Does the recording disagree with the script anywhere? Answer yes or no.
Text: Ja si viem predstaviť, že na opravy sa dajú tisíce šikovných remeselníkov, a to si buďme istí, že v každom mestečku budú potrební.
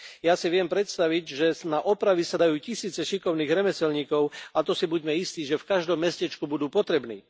no